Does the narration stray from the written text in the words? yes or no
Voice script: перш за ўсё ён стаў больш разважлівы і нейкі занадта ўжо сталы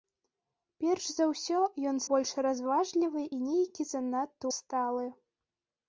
yes